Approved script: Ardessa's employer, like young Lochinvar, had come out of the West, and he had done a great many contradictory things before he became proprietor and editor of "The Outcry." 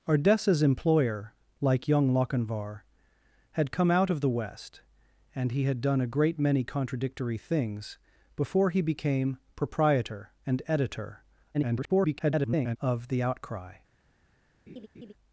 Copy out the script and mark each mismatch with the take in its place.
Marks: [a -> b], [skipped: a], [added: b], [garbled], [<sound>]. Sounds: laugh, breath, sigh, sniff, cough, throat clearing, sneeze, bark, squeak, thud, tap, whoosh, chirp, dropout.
Ardessa's employer, like young Lochinvar, had come out of the West, and he had done a great many contradictory things before he became proprietor and editor [garbled] of "The Outcry." [laugh]